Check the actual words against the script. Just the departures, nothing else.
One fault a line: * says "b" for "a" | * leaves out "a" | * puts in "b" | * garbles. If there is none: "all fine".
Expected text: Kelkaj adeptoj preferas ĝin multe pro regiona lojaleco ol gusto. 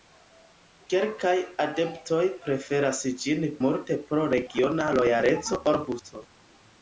all fine